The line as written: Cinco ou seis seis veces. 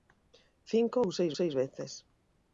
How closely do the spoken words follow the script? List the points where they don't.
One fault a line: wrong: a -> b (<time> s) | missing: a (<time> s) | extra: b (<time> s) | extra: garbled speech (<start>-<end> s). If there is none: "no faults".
no faults